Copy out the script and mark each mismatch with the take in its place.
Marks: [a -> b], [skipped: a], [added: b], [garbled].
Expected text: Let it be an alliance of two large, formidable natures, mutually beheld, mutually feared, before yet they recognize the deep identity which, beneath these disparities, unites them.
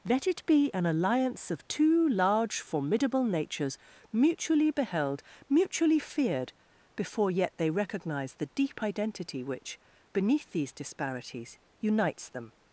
Let it be an alliance of two large, formidable natures, mutually beheld, mutually feared, before yet they recognize the deep identity which, beneath these disparities, unites them.